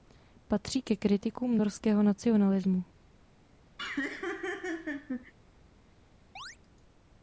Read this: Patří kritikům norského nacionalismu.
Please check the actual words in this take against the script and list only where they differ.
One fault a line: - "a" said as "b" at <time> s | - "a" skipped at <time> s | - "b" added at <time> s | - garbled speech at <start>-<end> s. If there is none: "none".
- "ke" added at 0.8 s